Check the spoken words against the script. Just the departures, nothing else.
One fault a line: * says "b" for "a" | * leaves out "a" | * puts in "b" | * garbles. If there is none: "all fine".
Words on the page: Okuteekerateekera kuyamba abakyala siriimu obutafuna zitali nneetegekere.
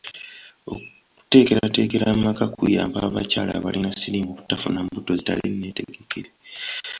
* puts in "amaka"
* puts in "abalina"
* puts in "mbuto"